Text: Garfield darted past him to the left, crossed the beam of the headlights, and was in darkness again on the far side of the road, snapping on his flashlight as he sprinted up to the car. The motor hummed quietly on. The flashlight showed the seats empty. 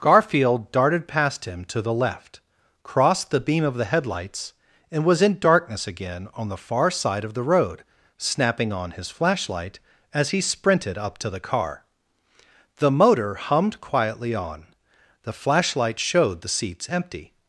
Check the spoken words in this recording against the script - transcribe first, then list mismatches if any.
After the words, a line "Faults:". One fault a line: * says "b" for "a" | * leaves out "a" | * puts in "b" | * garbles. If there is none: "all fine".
Garfield darted past him to the left, crossed the beam of the headlights, and was in darkness again on the far side of the road, snapping on his flashlight as he sprinted up to the car. The motor hummed quietly on. The flashlight showed the seats empty.
Faults:
all fine